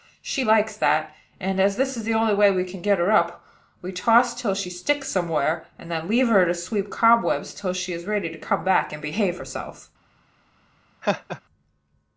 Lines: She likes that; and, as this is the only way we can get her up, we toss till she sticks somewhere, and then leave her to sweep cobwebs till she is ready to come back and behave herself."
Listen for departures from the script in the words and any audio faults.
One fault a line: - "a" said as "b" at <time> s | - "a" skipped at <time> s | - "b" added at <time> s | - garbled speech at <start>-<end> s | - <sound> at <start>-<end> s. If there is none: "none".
- laugh at 11.0-11.4 s